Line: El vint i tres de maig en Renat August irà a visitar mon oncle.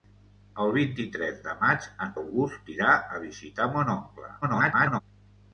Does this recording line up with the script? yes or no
no